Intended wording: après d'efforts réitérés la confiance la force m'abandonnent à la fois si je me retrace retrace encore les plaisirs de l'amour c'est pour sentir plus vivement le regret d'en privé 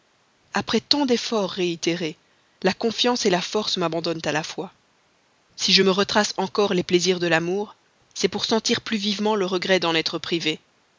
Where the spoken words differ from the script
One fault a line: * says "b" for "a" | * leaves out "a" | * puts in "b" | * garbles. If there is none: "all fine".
* puts in "tant"
* leaves out "retrace"
* puts in "être"